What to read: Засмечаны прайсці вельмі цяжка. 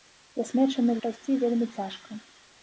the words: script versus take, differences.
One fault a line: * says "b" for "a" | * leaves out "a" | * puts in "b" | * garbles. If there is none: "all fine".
all fine